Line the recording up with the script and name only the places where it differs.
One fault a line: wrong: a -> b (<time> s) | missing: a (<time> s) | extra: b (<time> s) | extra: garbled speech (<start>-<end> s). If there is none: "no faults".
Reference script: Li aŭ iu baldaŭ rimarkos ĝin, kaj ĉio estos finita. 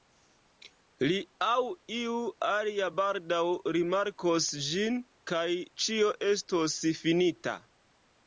extra: alia (2.5 s)